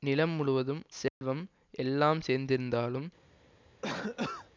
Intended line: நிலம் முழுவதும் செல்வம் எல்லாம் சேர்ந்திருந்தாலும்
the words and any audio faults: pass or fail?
fail